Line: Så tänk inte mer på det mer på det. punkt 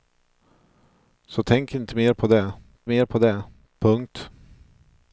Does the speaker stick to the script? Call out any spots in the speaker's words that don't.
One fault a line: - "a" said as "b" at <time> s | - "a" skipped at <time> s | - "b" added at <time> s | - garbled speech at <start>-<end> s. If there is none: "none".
none